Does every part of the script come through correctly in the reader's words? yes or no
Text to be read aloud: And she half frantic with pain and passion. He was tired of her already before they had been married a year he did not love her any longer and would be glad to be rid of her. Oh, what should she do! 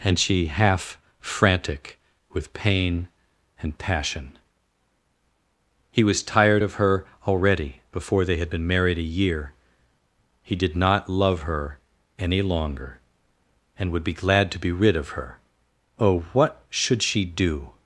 yes